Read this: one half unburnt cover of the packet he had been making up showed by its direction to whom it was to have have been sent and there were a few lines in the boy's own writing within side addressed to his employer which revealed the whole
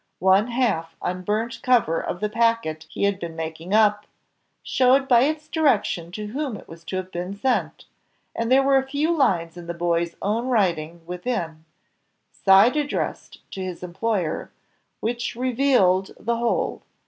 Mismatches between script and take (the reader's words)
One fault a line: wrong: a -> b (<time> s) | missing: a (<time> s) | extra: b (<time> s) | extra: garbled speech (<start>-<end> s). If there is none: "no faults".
missing: have (7.1 s)